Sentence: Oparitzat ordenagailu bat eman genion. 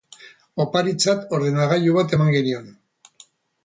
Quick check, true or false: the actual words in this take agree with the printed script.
true